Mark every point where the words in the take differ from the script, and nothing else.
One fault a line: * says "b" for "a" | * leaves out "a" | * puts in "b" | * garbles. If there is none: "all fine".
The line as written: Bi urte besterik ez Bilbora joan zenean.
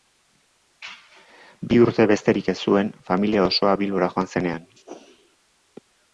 * puts in "zuen familia osoa"